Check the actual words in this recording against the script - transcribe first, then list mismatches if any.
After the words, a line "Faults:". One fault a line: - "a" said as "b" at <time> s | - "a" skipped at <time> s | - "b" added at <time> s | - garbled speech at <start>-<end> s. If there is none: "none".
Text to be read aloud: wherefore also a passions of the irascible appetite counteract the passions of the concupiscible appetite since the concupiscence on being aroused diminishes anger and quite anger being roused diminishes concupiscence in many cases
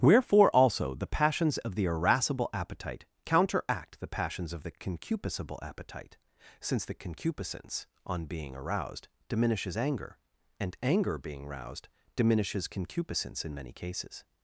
wherefore also the passions of the irascible appetite counteract the passions of the concupiscible appetite since the concupiscence on being aroused diminishes anger and anger being roused diminishes concupiscence in many cases
Faults:
- "a" said as "the" at 0.9 s
- "quite" skipped at 10.8 s